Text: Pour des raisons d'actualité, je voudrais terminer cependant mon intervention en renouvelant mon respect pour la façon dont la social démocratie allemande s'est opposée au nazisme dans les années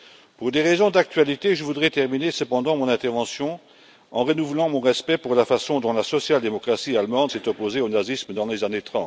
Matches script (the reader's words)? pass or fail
pass